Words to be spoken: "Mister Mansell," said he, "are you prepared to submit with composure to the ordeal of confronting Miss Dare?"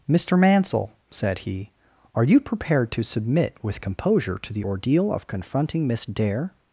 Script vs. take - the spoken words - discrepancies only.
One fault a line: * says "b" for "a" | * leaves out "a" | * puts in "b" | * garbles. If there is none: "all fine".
all fine